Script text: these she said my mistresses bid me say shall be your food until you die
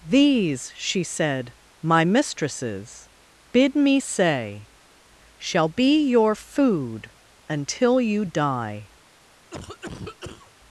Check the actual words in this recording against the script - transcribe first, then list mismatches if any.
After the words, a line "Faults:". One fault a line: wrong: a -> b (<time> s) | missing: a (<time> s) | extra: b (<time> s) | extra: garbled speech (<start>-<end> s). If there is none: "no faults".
these she said my mistresses bid me say shall be your food until you die
Faults:
no faults